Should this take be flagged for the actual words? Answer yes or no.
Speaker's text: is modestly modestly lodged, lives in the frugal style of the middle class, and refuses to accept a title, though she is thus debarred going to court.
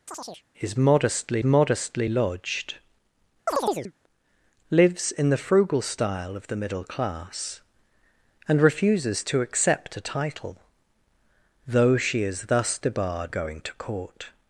no